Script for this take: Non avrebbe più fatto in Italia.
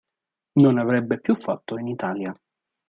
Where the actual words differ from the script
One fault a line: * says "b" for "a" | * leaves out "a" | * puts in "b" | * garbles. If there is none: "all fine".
all fine